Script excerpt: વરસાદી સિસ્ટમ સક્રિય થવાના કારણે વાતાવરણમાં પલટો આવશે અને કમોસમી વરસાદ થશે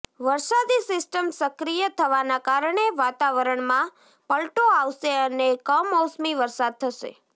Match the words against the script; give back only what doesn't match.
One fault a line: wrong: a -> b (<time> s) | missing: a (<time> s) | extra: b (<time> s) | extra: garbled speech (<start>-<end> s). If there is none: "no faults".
no faults